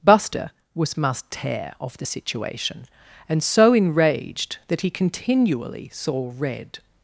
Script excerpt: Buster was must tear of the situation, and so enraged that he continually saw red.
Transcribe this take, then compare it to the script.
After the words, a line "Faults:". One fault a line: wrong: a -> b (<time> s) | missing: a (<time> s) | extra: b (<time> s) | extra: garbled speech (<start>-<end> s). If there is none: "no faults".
Buster was must tear of the situation, and so enraged that he continually saw red.
Faults:
no faults